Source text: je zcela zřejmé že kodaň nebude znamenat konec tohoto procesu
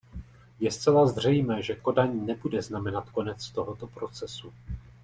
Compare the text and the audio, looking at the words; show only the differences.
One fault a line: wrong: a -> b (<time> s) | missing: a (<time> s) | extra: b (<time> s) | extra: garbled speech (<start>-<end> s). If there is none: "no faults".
no faults